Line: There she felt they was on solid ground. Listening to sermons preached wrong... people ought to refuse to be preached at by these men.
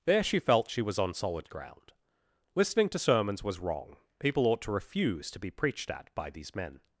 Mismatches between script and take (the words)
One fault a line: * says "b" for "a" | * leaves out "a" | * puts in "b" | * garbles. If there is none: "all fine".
* says "she" for "they"
* says "was" for "preached"